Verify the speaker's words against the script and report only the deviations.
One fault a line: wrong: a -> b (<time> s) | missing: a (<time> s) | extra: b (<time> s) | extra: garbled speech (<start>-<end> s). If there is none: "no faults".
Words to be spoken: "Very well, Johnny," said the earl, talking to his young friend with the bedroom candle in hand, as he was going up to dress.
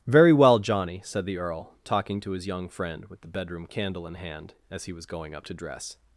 no faults